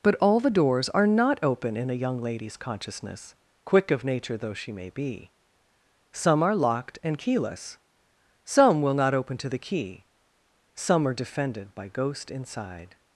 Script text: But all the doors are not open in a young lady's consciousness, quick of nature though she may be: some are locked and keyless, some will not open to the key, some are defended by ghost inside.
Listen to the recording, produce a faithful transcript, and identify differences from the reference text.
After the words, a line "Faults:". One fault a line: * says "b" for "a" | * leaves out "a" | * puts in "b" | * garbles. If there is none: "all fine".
But all the doors are not open in a young lady's consciousness, quick of nature though she may be: some are locked and keyless, some will not open to the key, some are defended by ghost inside.
Faults:
all fine